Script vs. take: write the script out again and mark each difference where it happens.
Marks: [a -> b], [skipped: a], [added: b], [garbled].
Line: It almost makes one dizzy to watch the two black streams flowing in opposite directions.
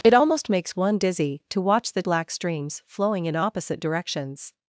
It almost makes one dizzy to watch the [skipped: two] black streams flowing in opposite directions.